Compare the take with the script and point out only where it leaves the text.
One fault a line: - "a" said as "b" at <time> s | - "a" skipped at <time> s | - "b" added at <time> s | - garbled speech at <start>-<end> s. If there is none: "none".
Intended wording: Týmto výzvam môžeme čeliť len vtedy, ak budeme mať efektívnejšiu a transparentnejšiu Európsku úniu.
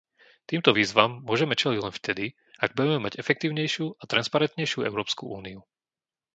none